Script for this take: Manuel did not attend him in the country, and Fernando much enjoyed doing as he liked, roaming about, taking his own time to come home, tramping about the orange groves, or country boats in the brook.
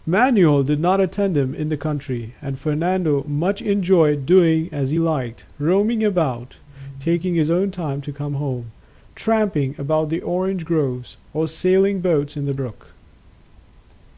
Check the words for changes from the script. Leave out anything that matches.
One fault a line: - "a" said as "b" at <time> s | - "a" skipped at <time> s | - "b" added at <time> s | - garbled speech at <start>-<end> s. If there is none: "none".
- "country" said as "sailing" at 11.5 s